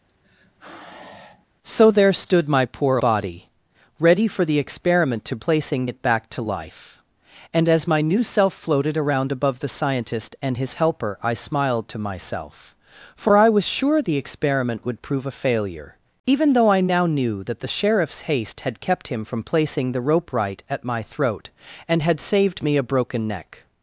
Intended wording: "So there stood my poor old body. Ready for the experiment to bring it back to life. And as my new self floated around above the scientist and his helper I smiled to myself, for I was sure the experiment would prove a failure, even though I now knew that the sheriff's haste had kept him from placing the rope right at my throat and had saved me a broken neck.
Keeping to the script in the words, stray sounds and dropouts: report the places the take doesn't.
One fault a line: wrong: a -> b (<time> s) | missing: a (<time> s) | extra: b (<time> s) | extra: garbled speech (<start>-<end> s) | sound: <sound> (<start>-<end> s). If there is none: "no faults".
sound: sigh (0.1-1.5 s)
missing: old (3.0 s)
wrong: bring -> placing (5.4 s)